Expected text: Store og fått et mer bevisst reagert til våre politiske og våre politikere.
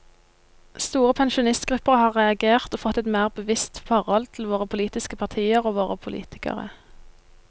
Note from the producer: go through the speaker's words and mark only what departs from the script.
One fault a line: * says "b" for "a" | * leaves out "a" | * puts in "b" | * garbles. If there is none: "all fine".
* puts in "pensjonistgrupper har reagert"
* says "forhold" for "reagert"
* puts in "partier"